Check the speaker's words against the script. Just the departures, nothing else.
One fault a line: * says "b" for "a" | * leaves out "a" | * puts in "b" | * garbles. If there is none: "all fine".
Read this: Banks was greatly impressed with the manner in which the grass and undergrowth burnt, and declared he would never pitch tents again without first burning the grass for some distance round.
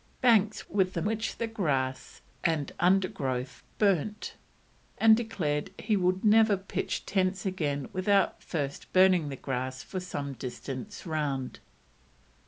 * leaves out "was greatly impressed"
* leaves out "manner in"